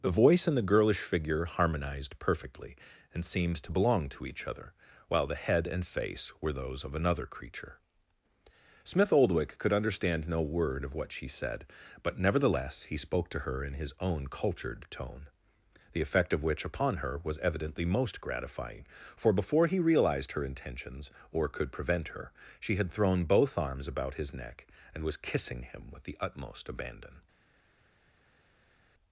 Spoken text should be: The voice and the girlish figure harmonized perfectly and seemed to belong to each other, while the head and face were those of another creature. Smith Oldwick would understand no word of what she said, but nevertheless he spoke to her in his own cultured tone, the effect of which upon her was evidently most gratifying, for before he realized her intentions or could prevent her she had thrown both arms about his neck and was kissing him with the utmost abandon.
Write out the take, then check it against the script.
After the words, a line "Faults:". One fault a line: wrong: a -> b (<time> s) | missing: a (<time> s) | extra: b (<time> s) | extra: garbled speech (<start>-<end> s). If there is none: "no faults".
The voice and the girlish figure harmonized perfectly and seemed to belong to each other, while the head and face were those of another creature. Smith Oldwick could understand no word of what she said, but nevertheless he spoke to her in his own cultured tone, the effect of which upon her was evidently most gratifying, for before he realized her intentions or could prevent her she had thrown both arms about his neck and was kissing him with the utmost abandon.
Faults:
wrong: would -> could (9.6 s)